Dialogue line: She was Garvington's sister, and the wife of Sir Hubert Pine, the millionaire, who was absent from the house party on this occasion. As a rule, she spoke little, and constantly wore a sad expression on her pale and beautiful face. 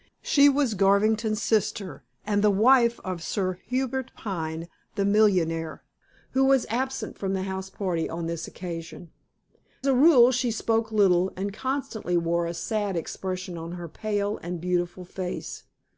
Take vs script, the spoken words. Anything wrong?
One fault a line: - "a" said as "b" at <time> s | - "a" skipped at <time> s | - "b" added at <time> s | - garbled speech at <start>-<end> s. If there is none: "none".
- "As" skipped at 9.1 s